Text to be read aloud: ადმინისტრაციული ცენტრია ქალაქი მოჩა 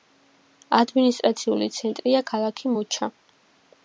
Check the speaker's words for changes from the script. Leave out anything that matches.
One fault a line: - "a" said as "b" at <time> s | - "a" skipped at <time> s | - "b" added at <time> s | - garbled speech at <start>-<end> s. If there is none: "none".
none